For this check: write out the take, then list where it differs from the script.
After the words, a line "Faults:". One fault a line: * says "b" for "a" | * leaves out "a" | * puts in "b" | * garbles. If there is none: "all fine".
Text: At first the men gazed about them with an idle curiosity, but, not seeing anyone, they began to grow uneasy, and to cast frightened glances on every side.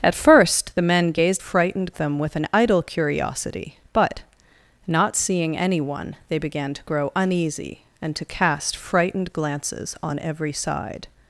At first the men gazed frightened them with an idle curiosity, but, not seeing anyone, they began to grow uneasy, and to cast frightened glances on every side.
Faults:
* says "frightened" for "about"